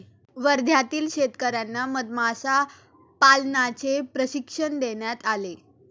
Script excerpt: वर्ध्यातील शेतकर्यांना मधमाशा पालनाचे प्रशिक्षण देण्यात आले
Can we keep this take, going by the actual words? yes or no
yes